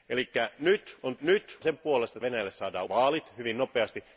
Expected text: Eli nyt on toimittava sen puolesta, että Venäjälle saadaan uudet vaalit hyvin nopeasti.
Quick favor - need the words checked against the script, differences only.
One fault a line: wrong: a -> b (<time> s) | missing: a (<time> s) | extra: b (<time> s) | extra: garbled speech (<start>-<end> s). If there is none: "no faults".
wrong: toimittava -> nyt (1.2 s)
missing: että (2.2 s)
missing: uudet (2.9 s)